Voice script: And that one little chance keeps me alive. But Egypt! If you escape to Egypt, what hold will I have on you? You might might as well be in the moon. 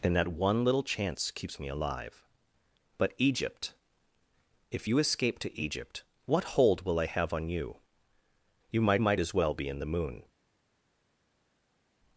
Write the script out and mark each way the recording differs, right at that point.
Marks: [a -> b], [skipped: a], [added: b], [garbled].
And that one little chance keeps me alive. But Egypt! If you escape to Egypt, what hold will I have on you? You might might as well be in the moon.